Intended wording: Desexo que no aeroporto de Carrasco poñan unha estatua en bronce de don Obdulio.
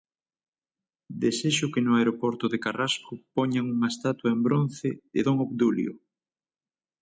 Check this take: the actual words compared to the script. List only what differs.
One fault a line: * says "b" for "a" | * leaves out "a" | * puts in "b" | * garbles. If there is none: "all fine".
all fine